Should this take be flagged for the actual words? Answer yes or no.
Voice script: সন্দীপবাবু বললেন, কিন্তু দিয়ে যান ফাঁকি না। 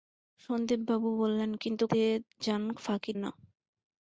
no